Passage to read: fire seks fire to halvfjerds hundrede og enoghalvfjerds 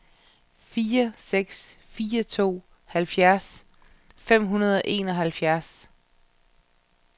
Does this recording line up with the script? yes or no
no